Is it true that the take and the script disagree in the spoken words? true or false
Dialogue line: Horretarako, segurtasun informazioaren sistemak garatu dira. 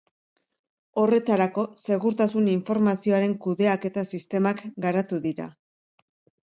true